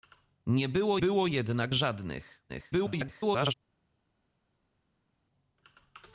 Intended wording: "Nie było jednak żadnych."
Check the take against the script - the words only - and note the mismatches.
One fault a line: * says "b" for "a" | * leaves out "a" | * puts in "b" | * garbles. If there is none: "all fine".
* puts in "było"
* garbles